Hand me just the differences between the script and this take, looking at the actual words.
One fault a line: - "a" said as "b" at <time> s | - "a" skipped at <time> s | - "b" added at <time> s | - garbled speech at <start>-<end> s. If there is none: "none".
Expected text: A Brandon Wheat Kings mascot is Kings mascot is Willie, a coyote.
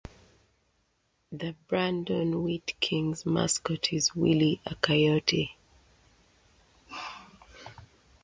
- "A" said as "The" at 1.3 s
- "Kings mascot is" skipped at 4.1 s